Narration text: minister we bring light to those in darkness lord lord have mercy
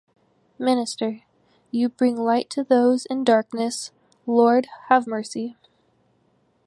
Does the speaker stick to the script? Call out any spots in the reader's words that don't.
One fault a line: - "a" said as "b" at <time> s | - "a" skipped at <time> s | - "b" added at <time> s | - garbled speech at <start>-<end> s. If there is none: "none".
- "we" said as "you" at 1.7 s
- "lord" skipped at 4.7 s